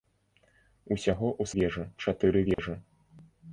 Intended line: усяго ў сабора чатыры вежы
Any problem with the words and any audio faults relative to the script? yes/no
yes